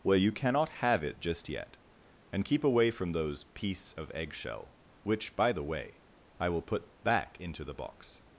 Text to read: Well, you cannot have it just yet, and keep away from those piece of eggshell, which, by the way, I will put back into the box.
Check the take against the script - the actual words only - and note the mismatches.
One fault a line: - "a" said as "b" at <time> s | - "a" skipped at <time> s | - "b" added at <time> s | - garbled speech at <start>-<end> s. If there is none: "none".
none